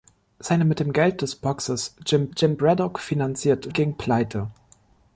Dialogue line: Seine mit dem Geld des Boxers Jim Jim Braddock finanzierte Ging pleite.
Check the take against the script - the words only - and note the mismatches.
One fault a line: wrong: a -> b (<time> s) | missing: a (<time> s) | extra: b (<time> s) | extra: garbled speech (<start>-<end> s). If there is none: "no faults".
no faults